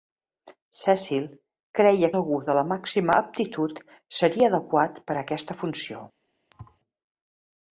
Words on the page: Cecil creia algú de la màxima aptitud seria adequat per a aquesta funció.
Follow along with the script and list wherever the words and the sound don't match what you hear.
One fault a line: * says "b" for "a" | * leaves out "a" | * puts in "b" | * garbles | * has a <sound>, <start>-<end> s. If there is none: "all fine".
* has a thud, 6.5-6.8 s